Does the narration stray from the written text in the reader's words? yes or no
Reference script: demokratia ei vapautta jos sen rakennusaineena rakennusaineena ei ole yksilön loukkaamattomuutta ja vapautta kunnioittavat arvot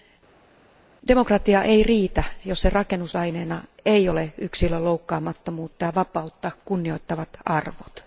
yes